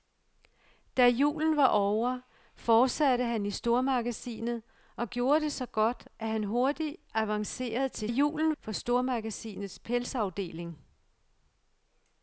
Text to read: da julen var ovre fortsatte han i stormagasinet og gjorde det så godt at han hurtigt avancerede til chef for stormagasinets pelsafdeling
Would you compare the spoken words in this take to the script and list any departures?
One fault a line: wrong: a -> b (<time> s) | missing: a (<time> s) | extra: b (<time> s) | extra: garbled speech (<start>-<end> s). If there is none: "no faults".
wrong: chef -> julen (8.1 s)